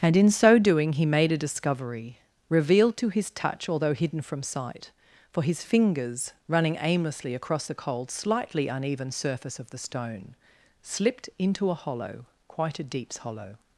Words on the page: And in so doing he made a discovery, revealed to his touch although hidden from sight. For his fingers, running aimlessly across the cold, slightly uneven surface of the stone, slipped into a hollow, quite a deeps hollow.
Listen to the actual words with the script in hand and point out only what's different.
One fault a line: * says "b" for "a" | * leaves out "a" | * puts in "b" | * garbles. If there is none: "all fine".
all fine